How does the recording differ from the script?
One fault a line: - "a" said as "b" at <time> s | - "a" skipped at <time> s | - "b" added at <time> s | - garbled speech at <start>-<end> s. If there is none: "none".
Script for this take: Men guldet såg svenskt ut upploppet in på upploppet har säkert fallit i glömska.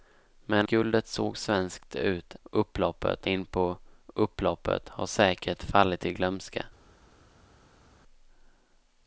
none